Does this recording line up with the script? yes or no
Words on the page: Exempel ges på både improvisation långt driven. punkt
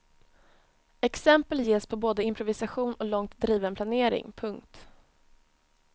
no